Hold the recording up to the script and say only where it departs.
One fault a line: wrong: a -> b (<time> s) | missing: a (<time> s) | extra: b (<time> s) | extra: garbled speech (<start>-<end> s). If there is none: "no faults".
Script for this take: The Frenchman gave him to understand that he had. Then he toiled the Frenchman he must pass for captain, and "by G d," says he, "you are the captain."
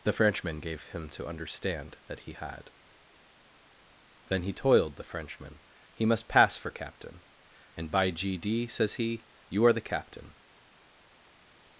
no faults